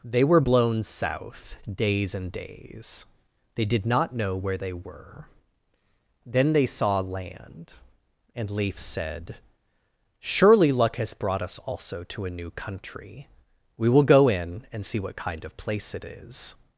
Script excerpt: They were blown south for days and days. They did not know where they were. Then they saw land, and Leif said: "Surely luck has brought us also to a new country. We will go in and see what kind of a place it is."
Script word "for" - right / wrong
wrong